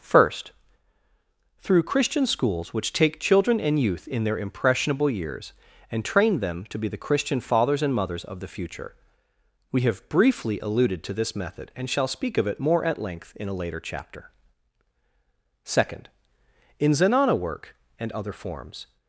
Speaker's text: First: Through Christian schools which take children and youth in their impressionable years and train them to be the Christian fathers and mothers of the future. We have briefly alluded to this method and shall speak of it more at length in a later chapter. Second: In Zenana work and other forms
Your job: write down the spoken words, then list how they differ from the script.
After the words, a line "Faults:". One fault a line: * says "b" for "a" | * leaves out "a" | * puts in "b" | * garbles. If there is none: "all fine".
First: Through Christian schools which take children and youth in their impressionable years and train them to be the Christian fathers and mothers of the future. We have briefly alluded to this method and shall speak of it more at length in a later chapter. Second: In Zenana work and other forms
Faults:
all fine